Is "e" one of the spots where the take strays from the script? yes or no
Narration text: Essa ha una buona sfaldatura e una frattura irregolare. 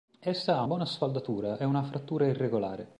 no